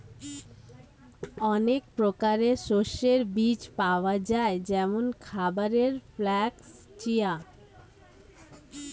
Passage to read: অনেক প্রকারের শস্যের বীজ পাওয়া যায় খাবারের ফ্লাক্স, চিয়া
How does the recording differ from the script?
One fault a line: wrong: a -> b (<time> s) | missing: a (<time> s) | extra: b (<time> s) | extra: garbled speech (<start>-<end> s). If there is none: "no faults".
extra: যেমন (4.7 s)